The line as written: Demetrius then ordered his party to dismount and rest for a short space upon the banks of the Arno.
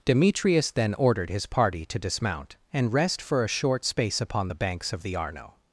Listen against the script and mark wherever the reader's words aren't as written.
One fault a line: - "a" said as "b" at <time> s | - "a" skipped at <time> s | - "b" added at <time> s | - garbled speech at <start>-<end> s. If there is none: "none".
none